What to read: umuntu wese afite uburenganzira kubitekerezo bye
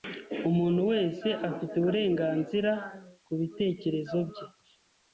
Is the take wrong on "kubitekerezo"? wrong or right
right